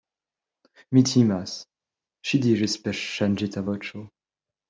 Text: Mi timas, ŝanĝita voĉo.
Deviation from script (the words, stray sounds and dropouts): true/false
true